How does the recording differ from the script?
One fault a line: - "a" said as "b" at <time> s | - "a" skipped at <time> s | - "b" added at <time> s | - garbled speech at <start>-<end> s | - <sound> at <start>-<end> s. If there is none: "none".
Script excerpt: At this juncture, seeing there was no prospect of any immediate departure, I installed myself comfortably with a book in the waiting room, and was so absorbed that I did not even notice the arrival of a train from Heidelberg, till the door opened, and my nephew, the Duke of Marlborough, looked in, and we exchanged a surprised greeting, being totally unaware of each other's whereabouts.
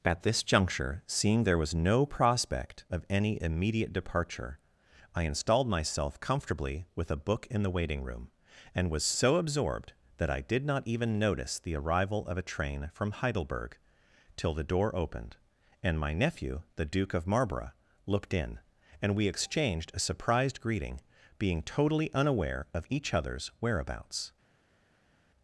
none